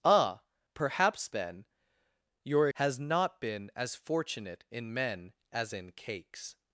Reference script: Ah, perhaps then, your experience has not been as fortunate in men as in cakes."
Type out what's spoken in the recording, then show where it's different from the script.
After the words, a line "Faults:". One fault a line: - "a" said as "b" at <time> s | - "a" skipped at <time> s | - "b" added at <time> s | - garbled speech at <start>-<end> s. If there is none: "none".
Ah, perhaps then, your has not been as fortunate in men as in cakes."
Faults:
- "experience" skipped at 2.7 s